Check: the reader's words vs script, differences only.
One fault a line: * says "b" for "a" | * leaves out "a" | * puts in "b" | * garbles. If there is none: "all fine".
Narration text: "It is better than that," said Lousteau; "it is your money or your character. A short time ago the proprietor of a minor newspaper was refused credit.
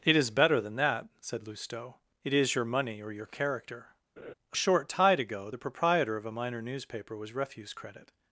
* says "tide" for "time"
* says "refuse" for "refused"